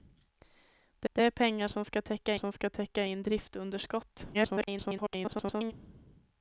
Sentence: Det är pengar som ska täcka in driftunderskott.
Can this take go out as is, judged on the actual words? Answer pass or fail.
fail